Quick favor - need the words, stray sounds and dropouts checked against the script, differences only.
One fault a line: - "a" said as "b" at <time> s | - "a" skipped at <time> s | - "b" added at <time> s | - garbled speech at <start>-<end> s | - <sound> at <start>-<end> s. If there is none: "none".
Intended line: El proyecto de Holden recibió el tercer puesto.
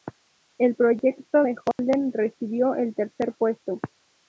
- dropout at 1.7-1.8 s